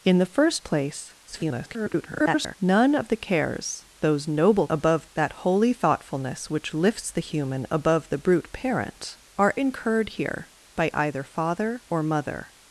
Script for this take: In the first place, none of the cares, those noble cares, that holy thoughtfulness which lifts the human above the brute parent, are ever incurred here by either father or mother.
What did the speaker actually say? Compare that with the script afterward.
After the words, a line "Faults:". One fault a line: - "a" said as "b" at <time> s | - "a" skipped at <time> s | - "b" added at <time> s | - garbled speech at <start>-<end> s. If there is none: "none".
In the first place, [garbled] none of the cares, those noble above, that holy thoughtfulness which lifts the human above the brute parent, are incurred here by either father or mother.
Faults:
- garbled speech at 1.3-2.6 s
- "cares" said as "above" at 4.7 s
- "ever" skipped at 9.5 s